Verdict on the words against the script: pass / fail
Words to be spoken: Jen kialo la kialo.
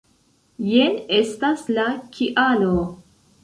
fail